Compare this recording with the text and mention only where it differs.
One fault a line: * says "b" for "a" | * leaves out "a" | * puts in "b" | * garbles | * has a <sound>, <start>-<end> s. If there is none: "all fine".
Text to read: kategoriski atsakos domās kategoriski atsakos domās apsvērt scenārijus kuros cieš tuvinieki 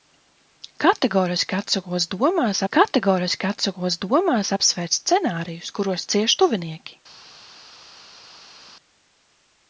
all fine